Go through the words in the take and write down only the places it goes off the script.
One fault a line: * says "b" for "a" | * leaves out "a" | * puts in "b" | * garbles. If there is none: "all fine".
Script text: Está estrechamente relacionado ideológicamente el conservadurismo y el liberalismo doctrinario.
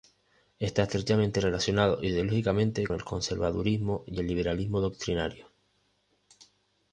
all fine